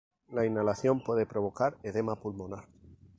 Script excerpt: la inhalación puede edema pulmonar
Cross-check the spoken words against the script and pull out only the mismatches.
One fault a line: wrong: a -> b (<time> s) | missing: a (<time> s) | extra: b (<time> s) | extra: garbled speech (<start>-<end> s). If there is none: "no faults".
extra: provocar (1.3 s)